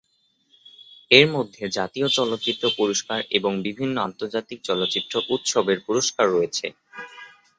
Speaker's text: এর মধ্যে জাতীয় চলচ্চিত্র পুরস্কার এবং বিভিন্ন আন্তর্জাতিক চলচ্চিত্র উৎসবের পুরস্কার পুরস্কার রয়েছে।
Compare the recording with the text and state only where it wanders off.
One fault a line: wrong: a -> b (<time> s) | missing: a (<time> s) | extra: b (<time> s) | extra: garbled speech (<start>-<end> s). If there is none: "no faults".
missing: পুরস্কার (6.3 s)